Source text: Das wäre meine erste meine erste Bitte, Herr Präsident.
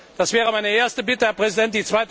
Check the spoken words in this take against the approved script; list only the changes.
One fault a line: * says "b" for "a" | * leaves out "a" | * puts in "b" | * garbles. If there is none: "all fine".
* leaves out "meine erste"